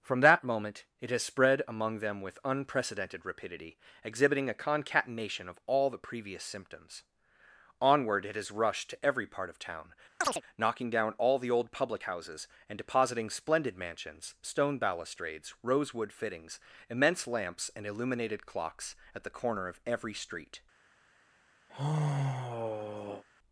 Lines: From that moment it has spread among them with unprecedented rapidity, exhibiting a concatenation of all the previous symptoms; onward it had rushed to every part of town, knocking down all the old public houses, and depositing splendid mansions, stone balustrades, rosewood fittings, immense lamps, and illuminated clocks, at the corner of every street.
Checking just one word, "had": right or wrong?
wrong